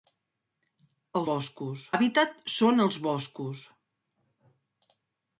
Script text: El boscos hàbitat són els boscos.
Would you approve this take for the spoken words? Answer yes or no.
yes